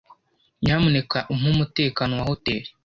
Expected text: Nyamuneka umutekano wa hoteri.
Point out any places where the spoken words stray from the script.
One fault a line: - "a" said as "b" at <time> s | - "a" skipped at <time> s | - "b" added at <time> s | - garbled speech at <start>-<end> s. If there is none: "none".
- "umpe" added at 1.3 s